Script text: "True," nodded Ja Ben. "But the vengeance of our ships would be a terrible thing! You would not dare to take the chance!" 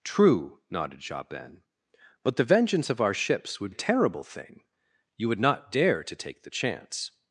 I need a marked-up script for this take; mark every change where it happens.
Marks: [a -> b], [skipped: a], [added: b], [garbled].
"True," nodded Ja Ben. "But the vengeance of our ships would [skipped: be] a terrible thing! You would not dare to take the chance!"